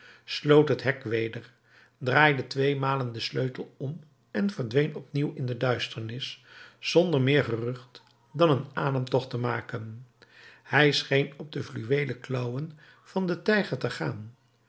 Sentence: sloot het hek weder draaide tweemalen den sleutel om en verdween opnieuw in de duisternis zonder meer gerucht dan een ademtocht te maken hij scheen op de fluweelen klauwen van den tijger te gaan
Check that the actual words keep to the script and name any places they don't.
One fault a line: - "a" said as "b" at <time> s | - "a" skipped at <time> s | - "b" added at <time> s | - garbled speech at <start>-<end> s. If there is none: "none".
none